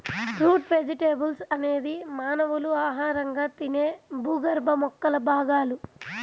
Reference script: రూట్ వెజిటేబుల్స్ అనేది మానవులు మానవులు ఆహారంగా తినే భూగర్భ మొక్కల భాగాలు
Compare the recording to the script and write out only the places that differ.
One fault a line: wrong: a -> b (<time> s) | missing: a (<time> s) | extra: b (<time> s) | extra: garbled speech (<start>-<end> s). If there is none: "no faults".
missing: మానవులు (2.7 s)